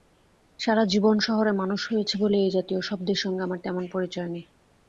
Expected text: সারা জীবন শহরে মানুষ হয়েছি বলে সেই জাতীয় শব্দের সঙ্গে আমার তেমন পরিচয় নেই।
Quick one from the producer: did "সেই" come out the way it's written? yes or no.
no